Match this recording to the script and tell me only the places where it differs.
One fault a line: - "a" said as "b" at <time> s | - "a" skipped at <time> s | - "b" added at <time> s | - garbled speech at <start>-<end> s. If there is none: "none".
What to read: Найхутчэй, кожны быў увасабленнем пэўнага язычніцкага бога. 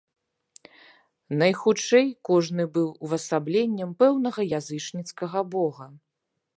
none